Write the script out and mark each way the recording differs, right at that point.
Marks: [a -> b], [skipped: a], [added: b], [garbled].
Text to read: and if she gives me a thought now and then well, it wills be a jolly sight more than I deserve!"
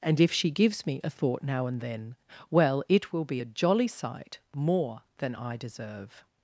and if she gives me a thought now and then well, it [wills -> will] be a jolly sight more than I deserve!"